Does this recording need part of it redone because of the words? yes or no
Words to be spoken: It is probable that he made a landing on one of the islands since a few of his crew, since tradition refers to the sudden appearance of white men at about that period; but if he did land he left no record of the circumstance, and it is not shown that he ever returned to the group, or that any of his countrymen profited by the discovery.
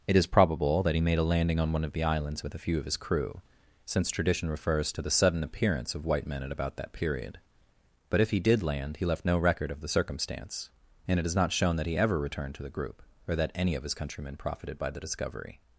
yes